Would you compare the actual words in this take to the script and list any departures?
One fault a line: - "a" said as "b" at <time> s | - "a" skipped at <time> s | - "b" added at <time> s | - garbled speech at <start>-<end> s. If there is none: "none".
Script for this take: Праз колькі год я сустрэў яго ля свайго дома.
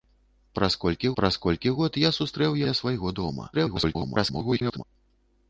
- "праз колькі" added at 1.2 s
- "яго" skipped at 2.6 s
- garbled speech at 3.5-4.8 s